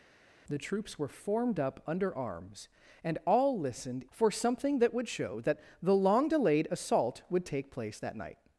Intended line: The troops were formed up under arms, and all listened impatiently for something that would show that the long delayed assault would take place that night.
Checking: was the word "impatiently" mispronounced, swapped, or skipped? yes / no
yes